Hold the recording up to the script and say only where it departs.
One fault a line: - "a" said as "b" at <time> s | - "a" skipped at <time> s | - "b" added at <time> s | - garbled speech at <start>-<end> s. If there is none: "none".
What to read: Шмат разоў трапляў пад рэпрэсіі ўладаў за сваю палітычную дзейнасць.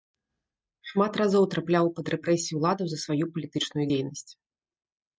none